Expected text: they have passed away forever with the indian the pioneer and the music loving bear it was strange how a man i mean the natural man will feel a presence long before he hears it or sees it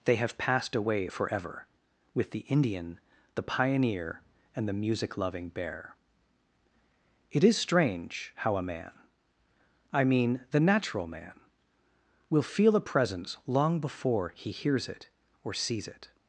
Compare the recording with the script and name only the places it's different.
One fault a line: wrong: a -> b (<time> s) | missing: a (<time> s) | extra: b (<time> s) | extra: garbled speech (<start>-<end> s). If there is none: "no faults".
wrong: was -> is (7.4 s)